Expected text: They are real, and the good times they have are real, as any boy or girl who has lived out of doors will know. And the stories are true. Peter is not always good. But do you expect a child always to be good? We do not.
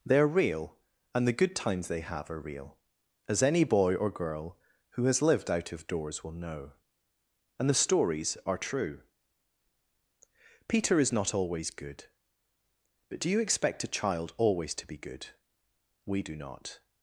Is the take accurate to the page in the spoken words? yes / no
yes